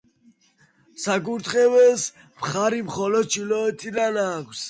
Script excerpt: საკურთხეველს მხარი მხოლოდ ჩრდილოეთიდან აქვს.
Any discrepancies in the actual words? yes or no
no